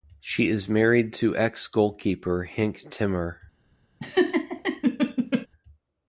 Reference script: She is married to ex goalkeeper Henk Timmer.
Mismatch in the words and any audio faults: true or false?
true